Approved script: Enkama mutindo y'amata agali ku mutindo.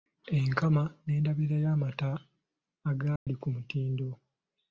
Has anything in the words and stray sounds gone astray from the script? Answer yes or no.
yes